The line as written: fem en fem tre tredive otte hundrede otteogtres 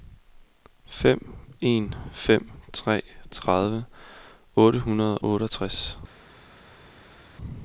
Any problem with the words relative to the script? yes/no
no